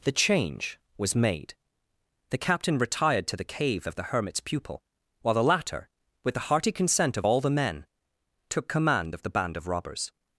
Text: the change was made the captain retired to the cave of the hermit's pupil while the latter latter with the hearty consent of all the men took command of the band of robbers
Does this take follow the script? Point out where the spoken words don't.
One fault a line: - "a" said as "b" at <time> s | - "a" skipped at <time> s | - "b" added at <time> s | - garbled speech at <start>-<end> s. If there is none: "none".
- "latter" skipped at 5.9 s